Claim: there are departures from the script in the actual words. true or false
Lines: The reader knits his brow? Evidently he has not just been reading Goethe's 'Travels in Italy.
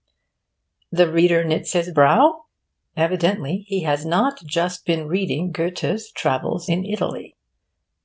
false